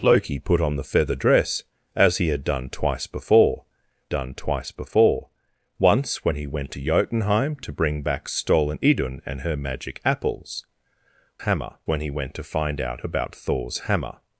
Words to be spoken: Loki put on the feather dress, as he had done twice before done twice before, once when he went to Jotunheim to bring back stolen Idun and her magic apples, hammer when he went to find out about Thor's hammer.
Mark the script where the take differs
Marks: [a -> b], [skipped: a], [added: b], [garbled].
Loki put on the feather dress, as he had done twice before done twice before, once when he went to Jotunheim to bring back stolen Idun and her magic apples, hammer when he went to find out about Thor's hammer.